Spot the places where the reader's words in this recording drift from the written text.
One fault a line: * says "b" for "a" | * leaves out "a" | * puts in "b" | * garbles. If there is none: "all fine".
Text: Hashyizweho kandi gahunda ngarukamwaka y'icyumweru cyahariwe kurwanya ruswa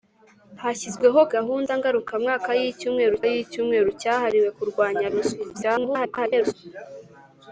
* leaves out "kandi"
* puts in "y'icyumweru"
* garbles